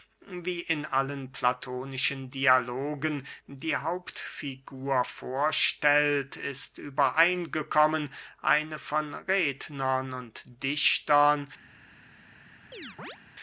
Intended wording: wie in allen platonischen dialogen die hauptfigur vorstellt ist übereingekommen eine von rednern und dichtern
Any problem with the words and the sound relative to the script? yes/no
yes